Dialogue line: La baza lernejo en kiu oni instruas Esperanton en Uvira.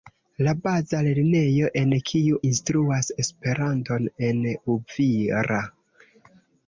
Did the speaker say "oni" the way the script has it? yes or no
no